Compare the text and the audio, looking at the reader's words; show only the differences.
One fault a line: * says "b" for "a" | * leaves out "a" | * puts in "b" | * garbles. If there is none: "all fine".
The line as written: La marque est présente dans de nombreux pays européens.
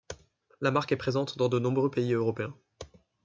all fine